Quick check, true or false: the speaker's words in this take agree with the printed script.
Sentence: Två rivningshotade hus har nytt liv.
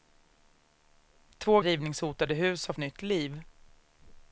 true